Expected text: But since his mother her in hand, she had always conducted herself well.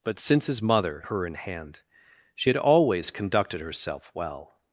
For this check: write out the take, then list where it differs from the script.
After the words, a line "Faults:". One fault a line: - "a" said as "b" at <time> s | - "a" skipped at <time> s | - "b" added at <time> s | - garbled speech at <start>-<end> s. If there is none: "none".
But since his mother her in hand, she had always conducted herself well.
Faults:
none